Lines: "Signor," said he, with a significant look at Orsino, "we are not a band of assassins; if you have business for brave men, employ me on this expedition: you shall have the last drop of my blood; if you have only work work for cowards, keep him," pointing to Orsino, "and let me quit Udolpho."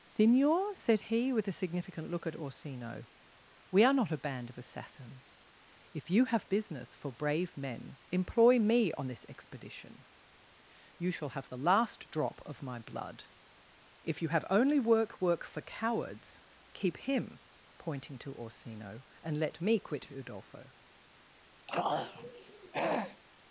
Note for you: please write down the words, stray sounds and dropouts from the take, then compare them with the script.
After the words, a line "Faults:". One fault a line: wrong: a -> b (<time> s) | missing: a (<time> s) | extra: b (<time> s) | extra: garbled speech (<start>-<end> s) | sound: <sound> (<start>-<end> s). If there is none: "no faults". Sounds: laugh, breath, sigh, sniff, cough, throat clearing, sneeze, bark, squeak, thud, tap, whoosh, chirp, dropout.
"Signor," said he, with a significant look at Orsino, "we are not a band of assassins; if you have business for brave men, employ me on this expedition: you shall have the last drop of my blood; if you have only work work for cowards, keep him," pointing to Orsino, "and let me quit Udolpho."
Faults:
sound: throat clearing (21.7-23.2 s)